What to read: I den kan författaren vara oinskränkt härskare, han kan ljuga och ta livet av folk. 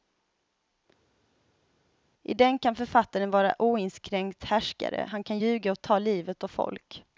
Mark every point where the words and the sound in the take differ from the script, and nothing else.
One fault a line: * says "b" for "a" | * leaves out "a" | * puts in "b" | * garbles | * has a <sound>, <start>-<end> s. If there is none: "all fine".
all fine